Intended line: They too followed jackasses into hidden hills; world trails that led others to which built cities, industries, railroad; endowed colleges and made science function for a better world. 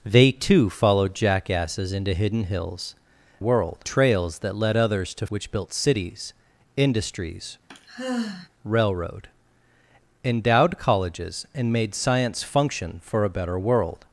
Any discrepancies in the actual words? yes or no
no